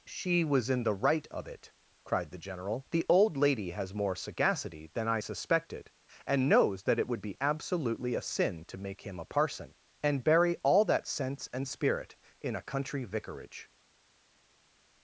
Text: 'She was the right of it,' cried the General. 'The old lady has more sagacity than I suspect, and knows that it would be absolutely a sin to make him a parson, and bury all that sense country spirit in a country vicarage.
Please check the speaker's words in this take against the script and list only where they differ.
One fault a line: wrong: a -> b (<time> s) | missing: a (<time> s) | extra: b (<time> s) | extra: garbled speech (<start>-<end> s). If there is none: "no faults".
extra: in (0.7 s)
wrong: suspect -> suspected (5.2 s)
wrong: country -> and (11.5 s)